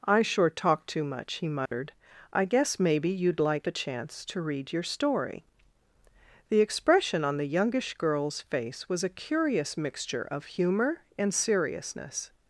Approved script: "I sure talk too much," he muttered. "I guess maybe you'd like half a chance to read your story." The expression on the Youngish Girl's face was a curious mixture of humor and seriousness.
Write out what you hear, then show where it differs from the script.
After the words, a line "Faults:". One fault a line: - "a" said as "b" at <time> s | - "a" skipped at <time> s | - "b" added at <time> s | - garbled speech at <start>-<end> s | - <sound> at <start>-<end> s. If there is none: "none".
"I sure talk too much," he muttered. "I guess maybe you'd like a chance to read your story." The expression on the Youngish Girl's face was a curious mixture of humor and seriousness.
Faults:
- dropout at 1.7-1.7 s
- "half" skipped at 3.7 s